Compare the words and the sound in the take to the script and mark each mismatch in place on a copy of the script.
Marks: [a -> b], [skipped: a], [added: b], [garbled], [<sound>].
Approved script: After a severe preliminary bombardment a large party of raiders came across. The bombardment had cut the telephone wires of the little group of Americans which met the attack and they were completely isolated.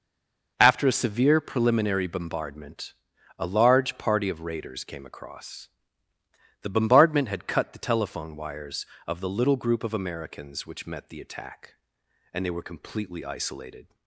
After a severe preliminary bombardment a large party of raiders came across. The bombardment had cut the telephone wires of the little group of Americans which met the attack and they were completely isolated.